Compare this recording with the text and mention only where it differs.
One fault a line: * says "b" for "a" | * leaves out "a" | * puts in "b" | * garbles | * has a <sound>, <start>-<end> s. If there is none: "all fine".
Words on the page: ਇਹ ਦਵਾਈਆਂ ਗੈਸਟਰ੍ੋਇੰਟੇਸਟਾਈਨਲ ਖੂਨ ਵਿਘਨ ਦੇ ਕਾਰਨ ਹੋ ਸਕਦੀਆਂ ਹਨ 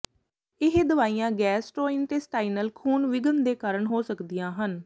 all fine